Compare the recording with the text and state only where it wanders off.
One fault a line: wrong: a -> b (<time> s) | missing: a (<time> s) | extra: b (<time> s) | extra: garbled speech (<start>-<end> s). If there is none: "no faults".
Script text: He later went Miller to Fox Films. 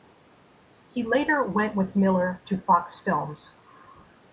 extra: with (1.8 s)